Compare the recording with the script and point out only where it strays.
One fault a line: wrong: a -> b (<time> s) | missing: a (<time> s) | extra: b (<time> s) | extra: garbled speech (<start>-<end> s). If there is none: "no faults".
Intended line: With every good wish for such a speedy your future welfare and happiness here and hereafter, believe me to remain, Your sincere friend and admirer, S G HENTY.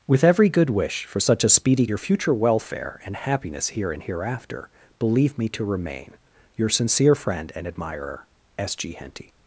no faults